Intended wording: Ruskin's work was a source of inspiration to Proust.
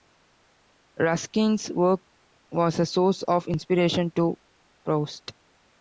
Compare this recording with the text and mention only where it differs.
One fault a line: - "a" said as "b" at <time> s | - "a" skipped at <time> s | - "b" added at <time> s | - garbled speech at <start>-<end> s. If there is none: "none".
none